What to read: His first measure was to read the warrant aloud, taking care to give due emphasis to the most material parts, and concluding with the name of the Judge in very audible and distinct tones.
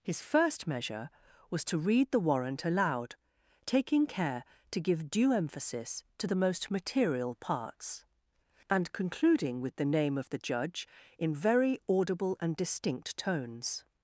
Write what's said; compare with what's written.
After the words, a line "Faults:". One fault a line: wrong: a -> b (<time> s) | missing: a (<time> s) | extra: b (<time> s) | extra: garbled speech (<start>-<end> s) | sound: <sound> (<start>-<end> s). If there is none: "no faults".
His first measure was to read the warrant aloud, taking care to give due emphasis to the most material parts, and concluding with the name of the Judge in very audible and distinct tones.
Faults:
no faults